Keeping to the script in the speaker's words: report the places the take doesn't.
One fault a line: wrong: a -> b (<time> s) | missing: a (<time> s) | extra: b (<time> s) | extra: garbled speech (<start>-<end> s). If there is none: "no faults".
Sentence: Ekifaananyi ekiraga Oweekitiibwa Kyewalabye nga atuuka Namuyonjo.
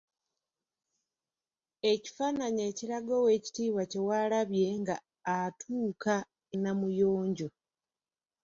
no faults